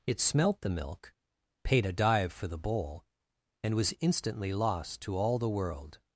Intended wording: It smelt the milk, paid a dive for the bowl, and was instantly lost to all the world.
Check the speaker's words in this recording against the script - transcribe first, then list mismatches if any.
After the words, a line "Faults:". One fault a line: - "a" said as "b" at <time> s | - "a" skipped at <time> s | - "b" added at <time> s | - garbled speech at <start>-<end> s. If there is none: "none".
It smelt the milk, paid a dive for the bowl, and was instantly lost to all the world.
Faults:
none